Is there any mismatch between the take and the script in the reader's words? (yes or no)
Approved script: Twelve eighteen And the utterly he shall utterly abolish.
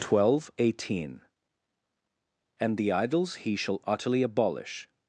yes